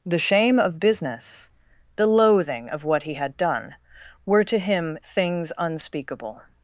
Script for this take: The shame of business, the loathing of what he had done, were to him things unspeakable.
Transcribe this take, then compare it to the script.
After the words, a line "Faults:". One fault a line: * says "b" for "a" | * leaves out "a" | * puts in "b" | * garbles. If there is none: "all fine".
The shame of business, the loathing of what he had done, were to him things unspeakable.
Faults:
all fine